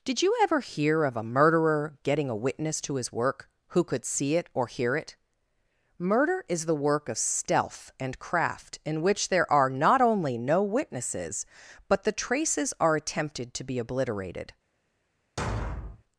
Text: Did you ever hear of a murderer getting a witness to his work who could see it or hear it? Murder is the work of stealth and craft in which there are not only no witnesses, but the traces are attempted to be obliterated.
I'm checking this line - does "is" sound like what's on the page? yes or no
yes